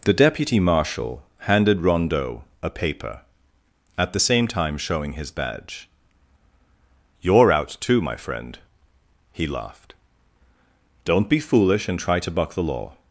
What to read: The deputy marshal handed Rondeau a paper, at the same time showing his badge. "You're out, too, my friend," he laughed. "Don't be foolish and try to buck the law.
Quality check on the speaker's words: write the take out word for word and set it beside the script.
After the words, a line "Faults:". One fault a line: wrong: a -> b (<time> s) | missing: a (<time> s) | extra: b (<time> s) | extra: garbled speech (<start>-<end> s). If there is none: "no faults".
The deputy marshal handed Rondeau a paper, at the same time showing his badge. "You're out, too, my friend," he laughed. "Don't be foolish and try to buck the law.
Faults:
no faults